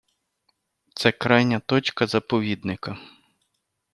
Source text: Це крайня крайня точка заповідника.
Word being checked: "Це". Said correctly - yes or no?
yes